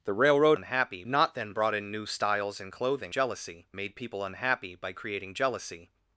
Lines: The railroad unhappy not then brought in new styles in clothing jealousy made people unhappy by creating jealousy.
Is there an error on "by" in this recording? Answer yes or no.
no